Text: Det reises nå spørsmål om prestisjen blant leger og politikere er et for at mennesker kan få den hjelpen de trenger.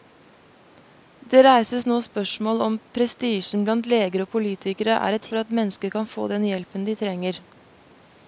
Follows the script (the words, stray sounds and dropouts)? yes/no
yes